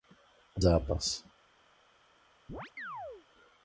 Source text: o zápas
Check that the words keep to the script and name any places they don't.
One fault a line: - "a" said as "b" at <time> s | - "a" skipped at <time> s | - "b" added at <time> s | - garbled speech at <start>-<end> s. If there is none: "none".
none